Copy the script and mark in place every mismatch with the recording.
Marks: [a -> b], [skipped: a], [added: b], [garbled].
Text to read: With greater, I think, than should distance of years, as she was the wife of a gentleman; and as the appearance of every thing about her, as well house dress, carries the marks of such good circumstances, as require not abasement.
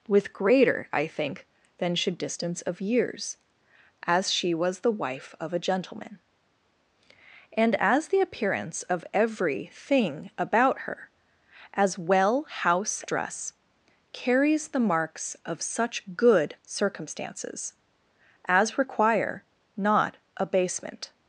With greater, I think, than should distance of years, as she was the wife of a gentleman; and as the appearance of every thing about her, as well house dress, carries the marks of such good circumstances, as require not abasement.